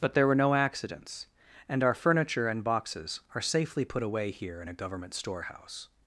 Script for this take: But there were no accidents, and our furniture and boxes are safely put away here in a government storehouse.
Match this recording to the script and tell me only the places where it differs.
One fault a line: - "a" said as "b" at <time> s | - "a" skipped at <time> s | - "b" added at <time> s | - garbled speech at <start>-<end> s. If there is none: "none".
none